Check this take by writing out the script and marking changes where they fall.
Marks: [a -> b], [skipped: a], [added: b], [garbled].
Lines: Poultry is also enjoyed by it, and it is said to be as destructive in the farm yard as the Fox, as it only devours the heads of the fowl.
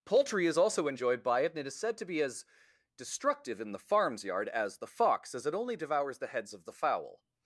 Poultry is also enjoyed by it, and it is said to be as destructive in the [farm -> farms] yard as the Fox, as it only devours the heads of the fowl.